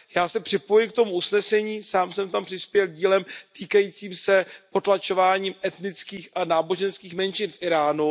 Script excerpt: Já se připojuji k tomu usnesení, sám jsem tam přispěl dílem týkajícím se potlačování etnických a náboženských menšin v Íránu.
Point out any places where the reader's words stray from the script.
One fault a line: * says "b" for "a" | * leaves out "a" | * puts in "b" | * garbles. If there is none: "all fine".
all fine